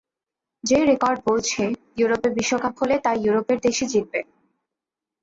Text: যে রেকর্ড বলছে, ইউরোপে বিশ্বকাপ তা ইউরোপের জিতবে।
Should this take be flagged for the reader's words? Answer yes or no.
yes